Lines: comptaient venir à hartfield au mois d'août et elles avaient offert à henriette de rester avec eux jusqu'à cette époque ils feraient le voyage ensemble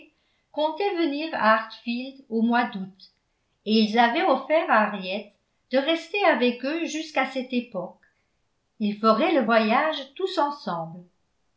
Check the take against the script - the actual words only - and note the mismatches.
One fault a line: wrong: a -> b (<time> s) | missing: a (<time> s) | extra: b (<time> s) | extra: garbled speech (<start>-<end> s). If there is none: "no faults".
wrong: elles -> ils (3.7 s)
extra: tous (10.1 s)